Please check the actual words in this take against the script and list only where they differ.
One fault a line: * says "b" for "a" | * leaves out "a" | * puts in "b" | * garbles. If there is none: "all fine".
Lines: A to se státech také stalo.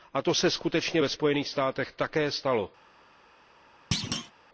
* puts in "skutečně ve Spojených"